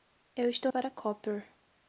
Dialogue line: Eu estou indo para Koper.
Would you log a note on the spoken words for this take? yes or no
yes